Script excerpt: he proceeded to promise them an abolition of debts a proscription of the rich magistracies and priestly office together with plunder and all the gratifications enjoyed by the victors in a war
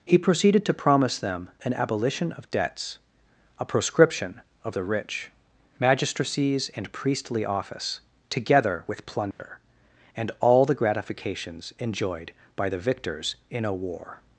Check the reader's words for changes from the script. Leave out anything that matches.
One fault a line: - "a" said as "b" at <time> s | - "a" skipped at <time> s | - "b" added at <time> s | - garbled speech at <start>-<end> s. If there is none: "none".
none